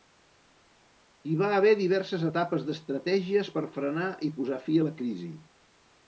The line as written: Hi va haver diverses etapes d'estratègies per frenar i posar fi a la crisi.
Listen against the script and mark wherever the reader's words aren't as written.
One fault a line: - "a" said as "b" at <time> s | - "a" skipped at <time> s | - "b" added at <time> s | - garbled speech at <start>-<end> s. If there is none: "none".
none